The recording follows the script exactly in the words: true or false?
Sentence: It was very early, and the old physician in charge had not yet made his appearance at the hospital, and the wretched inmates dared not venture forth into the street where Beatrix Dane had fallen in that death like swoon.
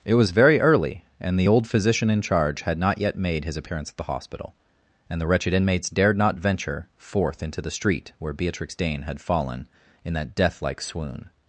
true